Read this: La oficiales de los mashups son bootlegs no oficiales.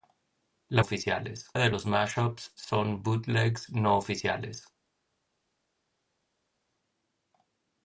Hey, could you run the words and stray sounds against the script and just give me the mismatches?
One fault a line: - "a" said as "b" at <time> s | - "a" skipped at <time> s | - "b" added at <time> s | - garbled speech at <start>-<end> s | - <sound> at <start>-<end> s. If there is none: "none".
none